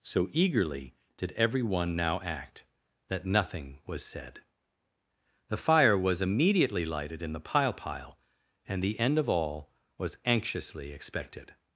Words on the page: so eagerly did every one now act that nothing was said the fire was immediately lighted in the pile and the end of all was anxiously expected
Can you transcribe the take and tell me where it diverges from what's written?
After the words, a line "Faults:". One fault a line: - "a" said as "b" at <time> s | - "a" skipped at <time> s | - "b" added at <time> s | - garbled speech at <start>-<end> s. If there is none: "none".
so eagerly did every one now act that nothing was said the fire was immediately lighted in the pile pile and the end of all was anxiously expected
Faults:
- "pile" added at 7.7 s